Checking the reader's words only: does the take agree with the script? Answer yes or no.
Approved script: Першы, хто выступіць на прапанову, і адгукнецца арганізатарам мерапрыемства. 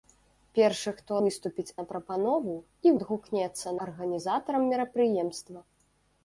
yes